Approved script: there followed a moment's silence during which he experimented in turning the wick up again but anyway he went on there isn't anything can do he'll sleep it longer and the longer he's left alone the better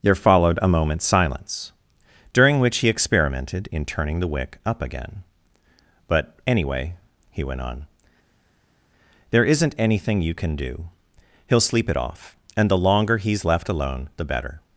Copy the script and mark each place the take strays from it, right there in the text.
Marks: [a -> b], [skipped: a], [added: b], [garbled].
there followed a moment's silence during which he experimented in turning the wick up again but anyway he went on there isn't anything [added: you] can do he'll sleep it [longer -> off] and the longer he's left alone the better